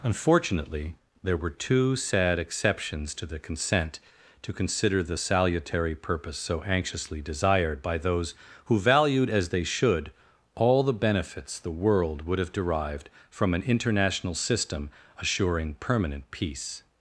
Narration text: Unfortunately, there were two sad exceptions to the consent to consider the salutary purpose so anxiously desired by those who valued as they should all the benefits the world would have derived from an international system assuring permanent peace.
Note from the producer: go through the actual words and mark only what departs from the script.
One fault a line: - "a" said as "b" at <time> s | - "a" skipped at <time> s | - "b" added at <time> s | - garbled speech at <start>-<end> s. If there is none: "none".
none